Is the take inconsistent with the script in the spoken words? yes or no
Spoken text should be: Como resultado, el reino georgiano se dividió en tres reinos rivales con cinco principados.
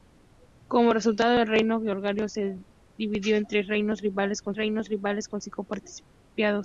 yes